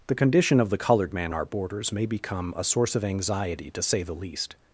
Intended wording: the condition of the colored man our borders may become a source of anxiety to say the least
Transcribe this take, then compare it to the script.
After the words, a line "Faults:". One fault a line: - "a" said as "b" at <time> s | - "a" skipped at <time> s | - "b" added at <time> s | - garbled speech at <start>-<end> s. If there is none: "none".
the condition of the colored man our borders may become a source of anxiety to say the least
Faults:
none